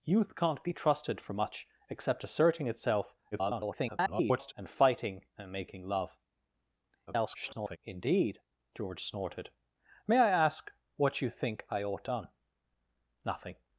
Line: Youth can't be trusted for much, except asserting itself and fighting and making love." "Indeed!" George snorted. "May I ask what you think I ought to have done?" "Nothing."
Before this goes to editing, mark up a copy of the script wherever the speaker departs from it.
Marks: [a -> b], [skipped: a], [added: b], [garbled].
Youth can't be trusted for much, except asserting itself [garbled] and fighting and making love." [garbled] "Indeed!" George snorted. "May I ask what you think I ought [skipped: to have] done?" "Nothing."